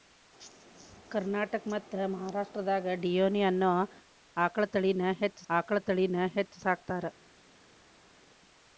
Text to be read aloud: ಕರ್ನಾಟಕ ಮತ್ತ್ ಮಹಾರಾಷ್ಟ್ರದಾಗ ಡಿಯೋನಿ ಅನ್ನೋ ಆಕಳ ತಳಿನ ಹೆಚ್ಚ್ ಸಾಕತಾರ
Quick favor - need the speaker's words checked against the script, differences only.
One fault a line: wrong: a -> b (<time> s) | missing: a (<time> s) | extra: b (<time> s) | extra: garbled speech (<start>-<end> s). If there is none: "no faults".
extra: ಆಕಳ ತಳಿನ ಹೆಚ್ಚ್ (5.5 s)